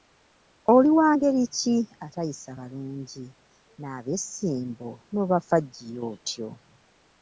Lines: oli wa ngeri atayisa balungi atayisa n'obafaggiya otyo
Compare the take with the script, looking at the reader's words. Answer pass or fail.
fail